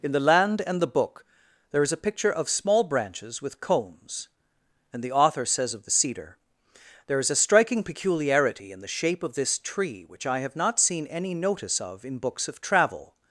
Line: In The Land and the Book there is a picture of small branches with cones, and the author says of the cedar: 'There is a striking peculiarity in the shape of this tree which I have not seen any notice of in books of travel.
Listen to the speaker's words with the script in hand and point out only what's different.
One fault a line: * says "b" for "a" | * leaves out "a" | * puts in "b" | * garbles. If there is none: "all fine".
all fine